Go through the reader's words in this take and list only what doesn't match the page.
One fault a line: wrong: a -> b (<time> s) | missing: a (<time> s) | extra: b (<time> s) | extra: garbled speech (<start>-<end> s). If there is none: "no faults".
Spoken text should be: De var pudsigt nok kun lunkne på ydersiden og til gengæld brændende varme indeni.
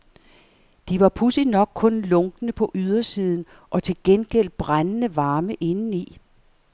no faults